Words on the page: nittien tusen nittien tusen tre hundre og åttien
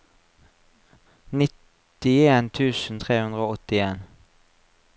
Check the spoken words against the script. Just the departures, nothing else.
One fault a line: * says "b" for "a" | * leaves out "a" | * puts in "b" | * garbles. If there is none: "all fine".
* leaves out "nittien tusen"